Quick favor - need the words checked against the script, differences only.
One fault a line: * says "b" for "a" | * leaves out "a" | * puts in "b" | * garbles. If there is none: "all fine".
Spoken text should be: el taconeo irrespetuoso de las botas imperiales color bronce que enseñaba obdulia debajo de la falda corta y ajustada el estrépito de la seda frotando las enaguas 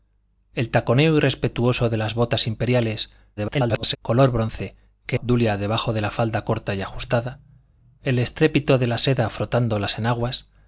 * garbles
* leaves out "enseñaba"